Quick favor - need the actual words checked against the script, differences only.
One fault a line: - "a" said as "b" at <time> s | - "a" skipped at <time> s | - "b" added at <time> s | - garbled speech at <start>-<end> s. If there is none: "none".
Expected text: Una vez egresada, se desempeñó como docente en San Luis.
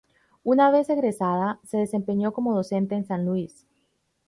none